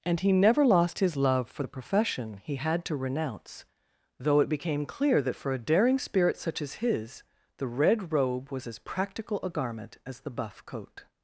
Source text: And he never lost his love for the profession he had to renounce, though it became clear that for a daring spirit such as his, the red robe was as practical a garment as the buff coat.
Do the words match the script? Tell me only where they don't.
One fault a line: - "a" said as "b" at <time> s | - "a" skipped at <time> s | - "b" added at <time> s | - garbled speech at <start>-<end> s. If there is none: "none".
none